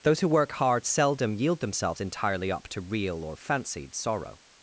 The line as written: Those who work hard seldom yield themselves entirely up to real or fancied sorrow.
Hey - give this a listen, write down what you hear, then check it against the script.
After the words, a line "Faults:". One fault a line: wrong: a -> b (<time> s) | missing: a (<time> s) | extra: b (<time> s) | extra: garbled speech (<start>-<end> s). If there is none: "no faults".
Those who work hard seldom yield themselves entirely up to real or fancied sorrow.
Faults:
no faults